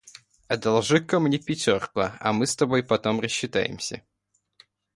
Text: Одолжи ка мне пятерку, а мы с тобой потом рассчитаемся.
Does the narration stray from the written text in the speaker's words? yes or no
no